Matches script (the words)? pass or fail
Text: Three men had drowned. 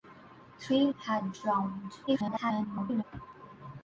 fail